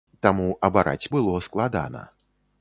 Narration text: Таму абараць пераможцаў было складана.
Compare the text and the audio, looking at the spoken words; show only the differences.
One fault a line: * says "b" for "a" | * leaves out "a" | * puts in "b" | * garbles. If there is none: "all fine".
* leaves out "пераможцаў"